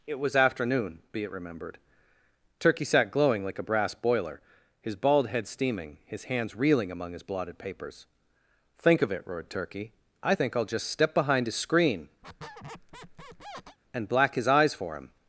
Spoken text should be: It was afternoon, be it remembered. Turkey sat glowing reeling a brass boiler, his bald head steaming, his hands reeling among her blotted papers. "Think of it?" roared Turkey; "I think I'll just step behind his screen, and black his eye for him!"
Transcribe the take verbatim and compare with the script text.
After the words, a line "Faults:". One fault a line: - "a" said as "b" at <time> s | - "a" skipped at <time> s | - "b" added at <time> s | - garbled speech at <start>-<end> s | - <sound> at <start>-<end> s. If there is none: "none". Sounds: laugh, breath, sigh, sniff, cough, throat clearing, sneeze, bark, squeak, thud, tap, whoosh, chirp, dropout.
It was afternoon, be it remembered. Turkey sat glowing like a brass boiler, his bald head steaming, his hands reeling among his blotted papers. "Think of it?" roared Turkey; "I think I'll just step behind his screen, and black his eyes for him!"
Faults:
- "reeling" said as "like" at 3.5 s
- "her" said as "his" at 7.1 s
- squeak at 12.2-13.8 s
- "eye" said as "eyes" at 14.5 s